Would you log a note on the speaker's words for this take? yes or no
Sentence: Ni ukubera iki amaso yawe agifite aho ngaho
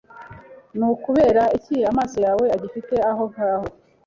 no